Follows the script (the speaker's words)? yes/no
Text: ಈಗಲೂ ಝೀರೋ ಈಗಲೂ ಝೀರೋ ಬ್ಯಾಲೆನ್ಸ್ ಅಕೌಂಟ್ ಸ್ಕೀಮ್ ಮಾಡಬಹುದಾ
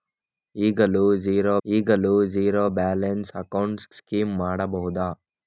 yes